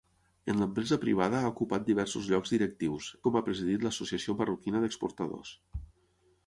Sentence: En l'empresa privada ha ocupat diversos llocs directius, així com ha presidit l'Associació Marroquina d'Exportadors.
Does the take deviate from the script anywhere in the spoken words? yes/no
yes